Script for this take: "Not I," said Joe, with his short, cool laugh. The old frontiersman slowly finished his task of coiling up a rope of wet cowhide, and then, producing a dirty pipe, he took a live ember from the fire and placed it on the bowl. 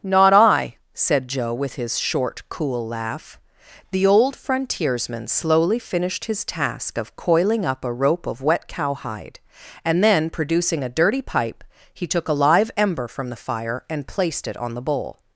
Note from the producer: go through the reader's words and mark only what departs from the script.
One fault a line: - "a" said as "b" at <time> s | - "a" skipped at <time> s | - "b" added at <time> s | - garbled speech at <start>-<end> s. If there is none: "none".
none